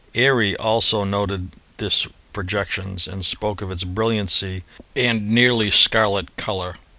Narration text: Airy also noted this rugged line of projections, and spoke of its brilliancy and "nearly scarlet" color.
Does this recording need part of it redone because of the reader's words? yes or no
yes